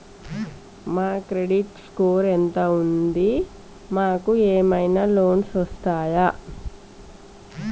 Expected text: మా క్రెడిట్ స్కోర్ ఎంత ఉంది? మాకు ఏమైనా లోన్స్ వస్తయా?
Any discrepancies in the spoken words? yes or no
no